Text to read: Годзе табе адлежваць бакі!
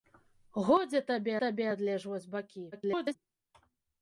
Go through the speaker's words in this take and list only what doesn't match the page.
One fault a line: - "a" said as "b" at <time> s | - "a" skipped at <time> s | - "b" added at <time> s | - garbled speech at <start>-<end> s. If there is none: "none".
- "табе" added at 1.4 s
- garbled speech at 2.7-3.2 s